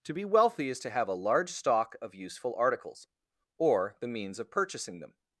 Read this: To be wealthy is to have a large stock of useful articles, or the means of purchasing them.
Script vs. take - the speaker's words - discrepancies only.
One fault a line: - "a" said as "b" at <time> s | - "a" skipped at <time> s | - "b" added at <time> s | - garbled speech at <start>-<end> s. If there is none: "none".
none